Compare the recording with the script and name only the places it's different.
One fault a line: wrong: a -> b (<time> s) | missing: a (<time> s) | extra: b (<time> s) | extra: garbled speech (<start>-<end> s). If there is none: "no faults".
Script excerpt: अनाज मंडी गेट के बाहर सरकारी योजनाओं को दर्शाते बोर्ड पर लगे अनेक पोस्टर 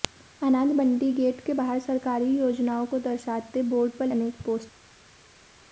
missing: लगे (4.1 s)